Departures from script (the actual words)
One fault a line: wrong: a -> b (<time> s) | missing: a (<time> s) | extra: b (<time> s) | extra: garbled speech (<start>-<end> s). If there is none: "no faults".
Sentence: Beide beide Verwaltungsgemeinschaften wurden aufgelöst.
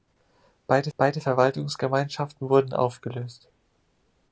no faults